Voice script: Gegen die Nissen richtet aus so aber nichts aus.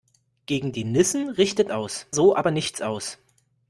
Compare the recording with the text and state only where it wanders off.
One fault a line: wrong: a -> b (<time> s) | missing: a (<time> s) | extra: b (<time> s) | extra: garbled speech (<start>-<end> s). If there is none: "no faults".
no faults